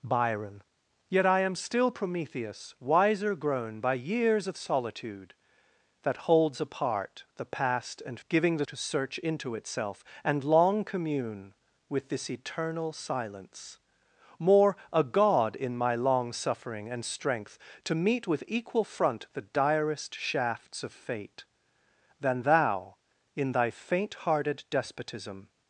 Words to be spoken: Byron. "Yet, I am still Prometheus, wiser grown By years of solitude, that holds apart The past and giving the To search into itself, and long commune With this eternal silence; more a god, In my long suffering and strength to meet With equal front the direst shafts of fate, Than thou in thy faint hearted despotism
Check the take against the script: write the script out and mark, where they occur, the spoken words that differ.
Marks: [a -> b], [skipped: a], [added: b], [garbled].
Byron. "Yet, I am still Prometheus, wiser grown By years of solitude, that holds apart The past and giving the To search into itself, and long commune With this eternal silence; more a god, In my long suffering and strength to meet With equal front the direst shafts of fate, Than thou in thy faint hearted despotism